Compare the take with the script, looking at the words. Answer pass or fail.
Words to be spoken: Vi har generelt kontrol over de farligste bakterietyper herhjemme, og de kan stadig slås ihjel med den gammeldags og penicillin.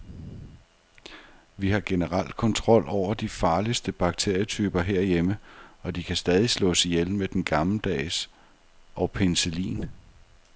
pass